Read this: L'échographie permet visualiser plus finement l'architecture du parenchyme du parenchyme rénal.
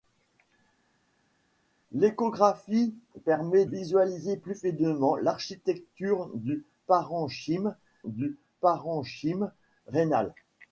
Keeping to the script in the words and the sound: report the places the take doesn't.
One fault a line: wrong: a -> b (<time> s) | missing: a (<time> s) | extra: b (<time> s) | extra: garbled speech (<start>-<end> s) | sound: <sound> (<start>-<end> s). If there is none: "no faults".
no faults